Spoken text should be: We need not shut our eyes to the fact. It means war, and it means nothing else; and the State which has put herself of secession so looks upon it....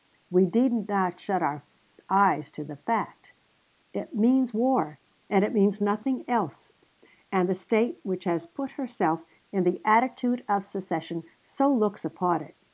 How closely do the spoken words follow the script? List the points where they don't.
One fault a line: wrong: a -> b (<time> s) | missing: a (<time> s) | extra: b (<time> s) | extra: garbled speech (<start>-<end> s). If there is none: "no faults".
extra: in the attitude (9.5 s)